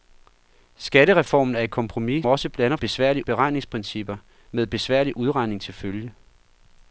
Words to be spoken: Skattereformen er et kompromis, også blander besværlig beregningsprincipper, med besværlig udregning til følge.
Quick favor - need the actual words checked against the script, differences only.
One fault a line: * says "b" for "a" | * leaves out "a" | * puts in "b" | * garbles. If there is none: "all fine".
all fine